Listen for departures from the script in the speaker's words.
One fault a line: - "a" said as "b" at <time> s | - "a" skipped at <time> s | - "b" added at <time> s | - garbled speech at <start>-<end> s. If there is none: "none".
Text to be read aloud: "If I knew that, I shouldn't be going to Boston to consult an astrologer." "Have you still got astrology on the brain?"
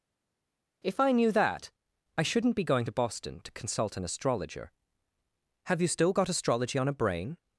- "the" said as "a" at 6.9 s